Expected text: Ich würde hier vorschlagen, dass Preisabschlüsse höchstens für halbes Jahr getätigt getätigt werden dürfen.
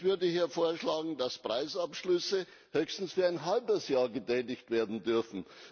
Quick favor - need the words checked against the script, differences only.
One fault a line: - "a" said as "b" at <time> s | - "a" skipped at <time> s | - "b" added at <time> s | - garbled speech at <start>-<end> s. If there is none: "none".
- "ein" added at 3.3 s
- "getätigt" skipped at 4.7 s